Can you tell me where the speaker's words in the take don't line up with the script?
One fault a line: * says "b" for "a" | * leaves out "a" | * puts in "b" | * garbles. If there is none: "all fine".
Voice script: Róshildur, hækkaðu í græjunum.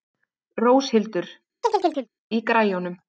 * leaves out "hækkaðu"